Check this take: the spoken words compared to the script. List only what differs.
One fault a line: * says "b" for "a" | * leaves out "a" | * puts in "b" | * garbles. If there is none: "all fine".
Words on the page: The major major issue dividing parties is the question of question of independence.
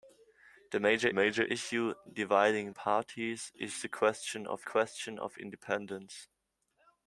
all fine